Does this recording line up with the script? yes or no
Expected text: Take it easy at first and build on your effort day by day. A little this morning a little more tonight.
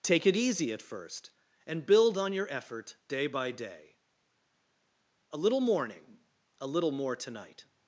no